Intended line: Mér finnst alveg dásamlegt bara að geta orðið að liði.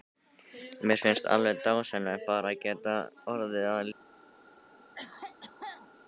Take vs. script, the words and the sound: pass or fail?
fail